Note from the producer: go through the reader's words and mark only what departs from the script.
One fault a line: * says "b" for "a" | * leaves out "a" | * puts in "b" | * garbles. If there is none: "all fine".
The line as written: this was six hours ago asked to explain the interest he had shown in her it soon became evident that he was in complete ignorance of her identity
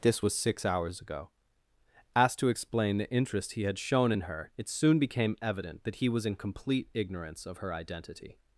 all fine